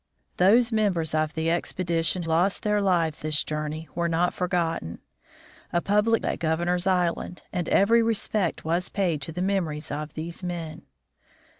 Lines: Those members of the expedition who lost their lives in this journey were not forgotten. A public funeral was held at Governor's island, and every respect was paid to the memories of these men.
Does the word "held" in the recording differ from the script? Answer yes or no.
yes